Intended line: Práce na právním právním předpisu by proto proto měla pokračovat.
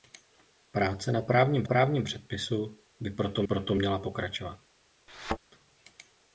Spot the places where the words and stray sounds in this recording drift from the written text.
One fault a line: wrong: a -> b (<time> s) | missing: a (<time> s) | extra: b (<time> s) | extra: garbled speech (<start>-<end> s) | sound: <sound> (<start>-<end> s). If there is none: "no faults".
sound: thud (5.1-5.4 s)